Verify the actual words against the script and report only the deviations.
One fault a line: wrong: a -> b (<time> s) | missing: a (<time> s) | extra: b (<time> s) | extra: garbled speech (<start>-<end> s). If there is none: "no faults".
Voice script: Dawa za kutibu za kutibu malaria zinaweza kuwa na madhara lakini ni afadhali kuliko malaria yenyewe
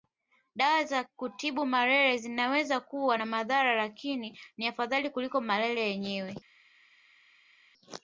missing: za kutibu (1.7 s)